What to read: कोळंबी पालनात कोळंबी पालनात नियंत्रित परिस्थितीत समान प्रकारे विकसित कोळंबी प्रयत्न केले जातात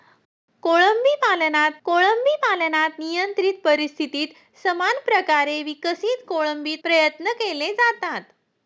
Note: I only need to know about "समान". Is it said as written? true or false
true